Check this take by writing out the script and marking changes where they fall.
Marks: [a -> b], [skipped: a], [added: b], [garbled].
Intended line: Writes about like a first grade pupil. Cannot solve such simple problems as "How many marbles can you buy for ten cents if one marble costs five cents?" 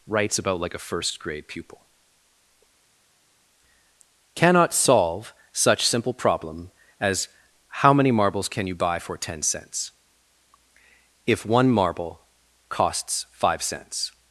Writes about like a first grade pupil. Cannot solve such simple [problems -> problem] as "How many marbles can you buy for ten cents if one marble costs five cents?"